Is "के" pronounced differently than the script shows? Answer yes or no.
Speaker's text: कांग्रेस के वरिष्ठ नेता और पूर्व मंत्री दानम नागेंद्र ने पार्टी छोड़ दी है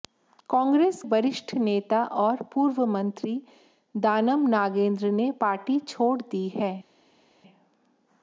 yes